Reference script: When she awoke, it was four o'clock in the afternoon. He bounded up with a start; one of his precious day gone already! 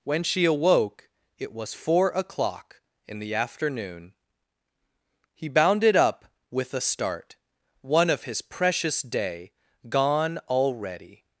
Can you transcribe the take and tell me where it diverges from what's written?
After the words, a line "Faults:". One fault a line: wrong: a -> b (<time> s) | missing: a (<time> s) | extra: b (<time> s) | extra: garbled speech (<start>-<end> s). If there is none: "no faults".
When she awoke, it was four o'clock in the afternoon. He bounded up with a start; one of his precious day gone already!
Faults:
no faults